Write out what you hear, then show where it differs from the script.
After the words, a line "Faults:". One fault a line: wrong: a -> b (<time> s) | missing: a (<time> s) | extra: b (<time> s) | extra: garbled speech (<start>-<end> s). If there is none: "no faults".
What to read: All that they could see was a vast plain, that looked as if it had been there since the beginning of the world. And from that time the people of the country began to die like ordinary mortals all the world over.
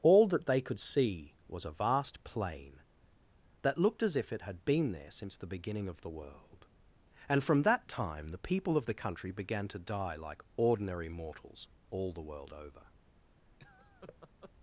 All that they could see was a vast plain, that looked as if it had been there since the beginning of the world. And from that time the people of the country began to die like ordinary mortals all the world over.
Faults:
no faults